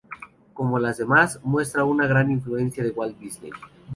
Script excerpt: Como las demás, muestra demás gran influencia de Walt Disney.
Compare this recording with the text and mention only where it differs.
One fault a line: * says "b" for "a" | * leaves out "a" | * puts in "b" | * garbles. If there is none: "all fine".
* says "una" for "demás"